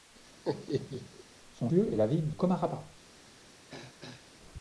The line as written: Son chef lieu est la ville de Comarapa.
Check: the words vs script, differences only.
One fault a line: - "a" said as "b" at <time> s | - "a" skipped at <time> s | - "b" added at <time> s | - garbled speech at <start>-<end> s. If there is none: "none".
- "chef" skipped at 1.7 s
- "de" skipped at 2.3 s